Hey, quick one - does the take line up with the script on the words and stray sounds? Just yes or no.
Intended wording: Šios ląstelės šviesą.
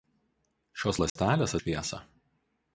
no